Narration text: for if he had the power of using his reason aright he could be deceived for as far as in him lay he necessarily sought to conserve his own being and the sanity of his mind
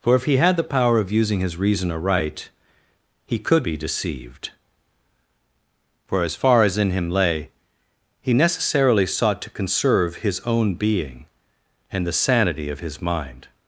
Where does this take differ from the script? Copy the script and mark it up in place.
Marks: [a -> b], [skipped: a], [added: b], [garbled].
for if he had the power of using his reason aright he could be deceived for as far as in him lay he necessarily sought to conserve his own being and the sanity of his mind